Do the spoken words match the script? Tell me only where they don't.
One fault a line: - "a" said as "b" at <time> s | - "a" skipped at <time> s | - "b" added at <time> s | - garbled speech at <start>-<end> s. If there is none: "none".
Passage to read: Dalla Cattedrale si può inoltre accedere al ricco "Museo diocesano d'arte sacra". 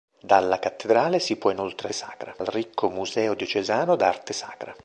- "accedere" said as "sacra" at 1.9 s